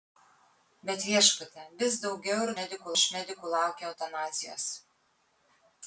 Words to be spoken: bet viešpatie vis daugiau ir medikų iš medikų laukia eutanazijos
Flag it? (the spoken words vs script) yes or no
no